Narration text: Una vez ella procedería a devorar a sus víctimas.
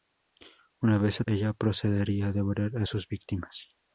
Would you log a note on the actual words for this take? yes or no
no